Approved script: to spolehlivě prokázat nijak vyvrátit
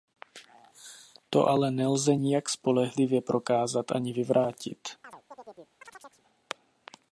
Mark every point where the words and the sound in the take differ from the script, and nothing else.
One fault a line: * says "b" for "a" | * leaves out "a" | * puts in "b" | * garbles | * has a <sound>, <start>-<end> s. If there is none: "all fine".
* puts in "ale nelze nijak"
* says "ani" for "nijak"
* has a chirp, 5.0-6.2 s